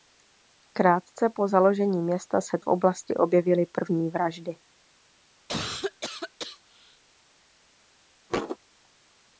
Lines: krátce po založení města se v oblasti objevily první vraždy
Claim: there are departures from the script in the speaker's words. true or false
false